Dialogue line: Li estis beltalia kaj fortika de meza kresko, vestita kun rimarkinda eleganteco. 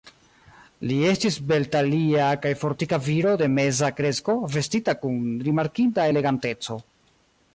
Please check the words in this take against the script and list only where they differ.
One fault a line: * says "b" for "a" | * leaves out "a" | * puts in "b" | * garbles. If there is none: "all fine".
* puts in "viro"